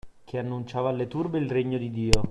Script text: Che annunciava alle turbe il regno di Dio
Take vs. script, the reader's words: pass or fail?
pass